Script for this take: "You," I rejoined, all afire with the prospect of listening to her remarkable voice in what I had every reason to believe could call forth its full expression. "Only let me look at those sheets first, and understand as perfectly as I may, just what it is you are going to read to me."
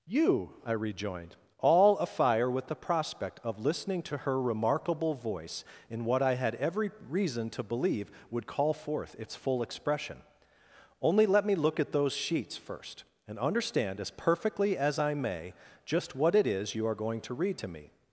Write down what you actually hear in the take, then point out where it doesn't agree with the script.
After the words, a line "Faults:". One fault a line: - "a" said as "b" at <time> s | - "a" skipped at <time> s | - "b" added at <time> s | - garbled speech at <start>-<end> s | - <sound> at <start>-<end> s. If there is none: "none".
"You," I rejoined, all afire with the prospect of listening to her remarkable voice in what I had every reason to believe would call forth its full expression. "Only let me look at those sheets first, and understand as perfectly as I may, just what it is you are going to read to me."
Faults:
- "could" said as "would" at 8.3 s